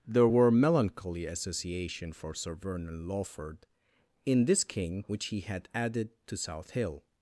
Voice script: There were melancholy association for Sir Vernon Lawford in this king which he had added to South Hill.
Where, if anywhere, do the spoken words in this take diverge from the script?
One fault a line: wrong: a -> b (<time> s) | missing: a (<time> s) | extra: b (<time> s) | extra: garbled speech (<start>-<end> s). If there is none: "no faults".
no faults